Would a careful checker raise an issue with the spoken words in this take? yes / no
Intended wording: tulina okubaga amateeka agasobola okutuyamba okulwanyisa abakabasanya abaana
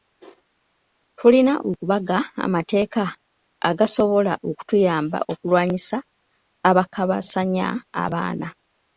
no